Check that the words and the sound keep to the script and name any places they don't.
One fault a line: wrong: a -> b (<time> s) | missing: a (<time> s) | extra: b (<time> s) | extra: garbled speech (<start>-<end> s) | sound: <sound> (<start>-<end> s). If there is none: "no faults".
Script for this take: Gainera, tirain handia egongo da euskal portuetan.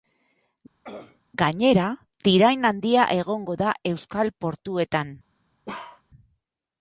sound: throat clearing (0.8-1.2 s)
sound: bark (5.7-6.0 s)